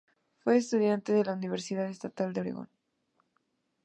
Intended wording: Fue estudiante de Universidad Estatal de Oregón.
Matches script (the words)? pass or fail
fail